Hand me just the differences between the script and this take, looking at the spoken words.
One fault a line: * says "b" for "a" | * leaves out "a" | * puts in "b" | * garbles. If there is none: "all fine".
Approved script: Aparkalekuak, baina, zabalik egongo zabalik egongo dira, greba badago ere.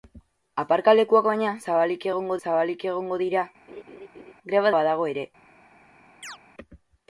all fine